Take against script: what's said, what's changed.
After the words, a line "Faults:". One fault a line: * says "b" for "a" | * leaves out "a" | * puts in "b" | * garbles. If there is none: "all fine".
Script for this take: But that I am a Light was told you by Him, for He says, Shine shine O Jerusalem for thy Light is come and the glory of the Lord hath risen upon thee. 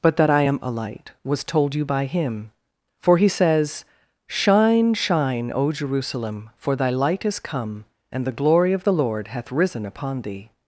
But that I am a Light was told you by Him, for He says, Shine shine O Jerusalem for thy Light is come and the glory of the Lord hath risen upon thee.
Faults:
all fine